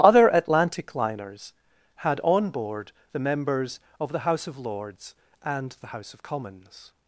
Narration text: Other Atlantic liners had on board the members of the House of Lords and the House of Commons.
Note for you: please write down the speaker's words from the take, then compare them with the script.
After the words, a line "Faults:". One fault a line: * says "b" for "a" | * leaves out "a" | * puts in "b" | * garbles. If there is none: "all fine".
Other Atlantic liners had on board the members of the House of Lords and the House of Commons.
Faults:
all fine